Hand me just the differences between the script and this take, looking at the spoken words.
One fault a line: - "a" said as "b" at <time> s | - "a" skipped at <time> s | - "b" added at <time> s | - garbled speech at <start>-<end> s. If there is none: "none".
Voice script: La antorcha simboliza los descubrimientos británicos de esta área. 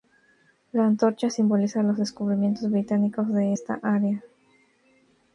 none